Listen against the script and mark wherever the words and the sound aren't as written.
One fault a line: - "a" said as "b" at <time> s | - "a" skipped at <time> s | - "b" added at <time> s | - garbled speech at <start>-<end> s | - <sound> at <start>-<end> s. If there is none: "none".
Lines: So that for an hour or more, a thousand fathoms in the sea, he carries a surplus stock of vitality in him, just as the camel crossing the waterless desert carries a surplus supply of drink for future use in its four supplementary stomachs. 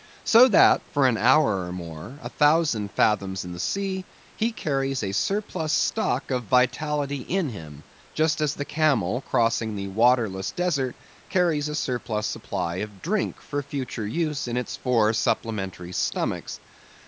none